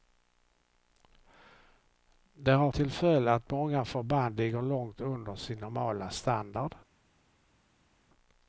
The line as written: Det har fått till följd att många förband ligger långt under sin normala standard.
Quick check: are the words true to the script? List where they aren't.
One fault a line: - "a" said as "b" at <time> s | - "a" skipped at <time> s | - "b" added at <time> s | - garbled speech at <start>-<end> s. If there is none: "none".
- "fått" skipped at 2.7 s